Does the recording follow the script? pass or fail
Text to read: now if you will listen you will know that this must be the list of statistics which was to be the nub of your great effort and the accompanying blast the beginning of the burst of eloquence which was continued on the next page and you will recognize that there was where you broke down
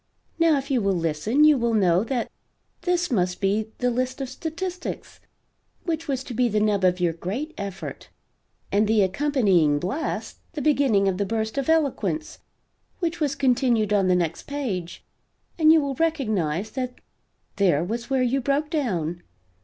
pass